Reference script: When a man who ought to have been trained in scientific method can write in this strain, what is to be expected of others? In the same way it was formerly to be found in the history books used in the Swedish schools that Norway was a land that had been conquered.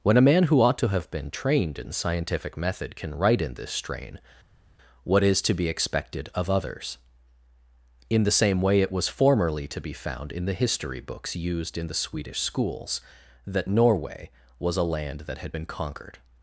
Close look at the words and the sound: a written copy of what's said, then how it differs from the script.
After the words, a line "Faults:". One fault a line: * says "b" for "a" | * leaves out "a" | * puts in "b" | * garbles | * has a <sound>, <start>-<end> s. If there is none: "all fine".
When a man who ought to have been trained in scientific method can write in this strain, what is to be expected of others? In the same way it was formerly to be found in the history books used in the Swedish schools that Norway was a land that had been conquered.
Faults:
all fine